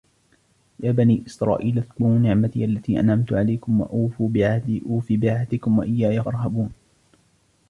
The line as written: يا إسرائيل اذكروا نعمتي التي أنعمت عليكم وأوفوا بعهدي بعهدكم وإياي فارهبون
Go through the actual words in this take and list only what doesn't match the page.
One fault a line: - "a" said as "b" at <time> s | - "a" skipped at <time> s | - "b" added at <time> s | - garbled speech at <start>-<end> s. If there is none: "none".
- "بني" added at 0.9 s
- "أوف" added at 4.9 s